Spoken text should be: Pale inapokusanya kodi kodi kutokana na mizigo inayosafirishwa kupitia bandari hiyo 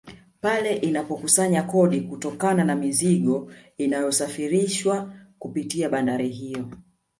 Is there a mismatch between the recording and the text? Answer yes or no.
yes